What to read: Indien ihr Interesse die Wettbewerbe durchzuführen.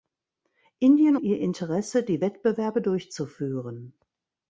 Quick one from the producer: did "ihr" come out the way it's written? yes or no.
yes